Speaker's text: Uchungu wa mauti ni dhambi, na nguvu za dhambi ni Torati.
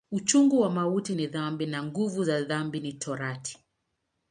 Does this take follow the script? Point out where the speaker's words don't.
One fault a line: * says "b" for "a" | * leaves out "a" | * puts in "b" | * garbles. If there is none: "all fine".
all fine